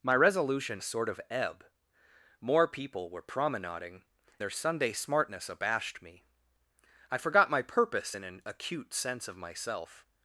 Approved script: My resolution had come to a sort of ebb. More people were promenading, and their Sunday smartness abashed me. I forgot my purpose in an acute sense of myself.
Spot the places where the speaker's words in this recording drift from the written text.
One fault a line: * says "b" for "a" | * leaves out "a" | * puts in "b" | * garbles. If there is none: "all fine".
* leaves out "had come to"
* leaves out "and"